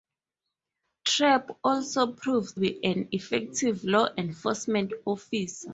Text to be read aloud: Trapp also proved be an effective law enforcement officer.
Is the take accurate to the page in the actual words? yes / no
yes